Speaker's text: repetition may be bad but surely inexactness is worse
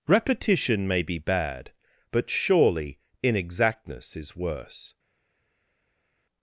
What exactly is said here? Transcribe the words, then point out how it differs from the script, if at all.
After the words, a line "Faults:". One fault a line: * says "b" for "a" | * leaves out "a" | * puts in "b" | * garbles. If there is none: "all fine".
repetition may be bad but surely inexactness is worse
Faults:
all fine